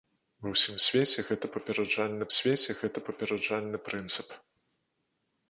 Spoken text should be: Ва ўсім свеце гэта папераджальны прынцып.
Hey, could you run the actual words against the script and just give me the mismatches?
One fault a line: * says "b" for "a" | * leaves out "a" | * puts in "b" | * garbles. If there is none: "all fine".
* puts in "свеце гэта папераджальны"